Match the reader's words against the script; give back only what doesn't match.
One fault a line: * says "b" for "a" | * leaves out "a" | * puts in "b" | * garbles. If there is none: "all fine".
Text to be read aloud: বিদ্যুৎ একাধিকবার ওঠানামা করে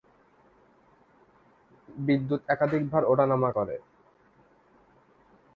all fine